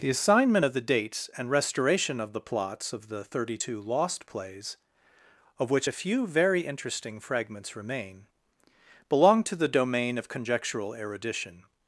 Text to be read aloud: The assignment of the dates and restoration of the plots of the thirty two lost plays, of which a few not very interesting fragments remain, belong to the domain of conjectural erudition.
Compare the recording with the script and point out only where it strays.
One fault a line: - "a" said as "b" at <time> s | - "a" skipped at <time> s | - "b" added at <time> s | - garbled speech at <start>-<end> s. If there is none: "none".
- "not" skipped at 6.3 s